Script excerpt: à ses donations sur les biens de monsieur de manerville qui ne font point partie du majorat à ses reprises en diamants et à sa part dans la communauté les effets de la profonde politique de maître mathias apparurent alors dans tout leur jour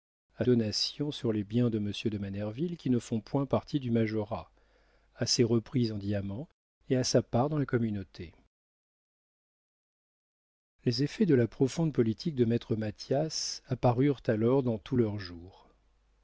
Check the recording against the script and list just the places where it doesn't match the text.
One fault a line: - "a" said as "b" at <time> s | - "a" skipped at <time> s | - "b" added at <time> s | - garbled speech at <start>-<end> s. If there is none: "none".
- "ses" skipped at 0.5 s